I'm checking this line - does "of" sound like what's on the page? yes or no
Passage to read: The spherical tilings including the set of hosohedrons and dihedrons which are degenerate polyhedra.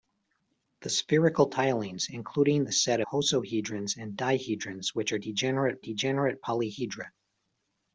no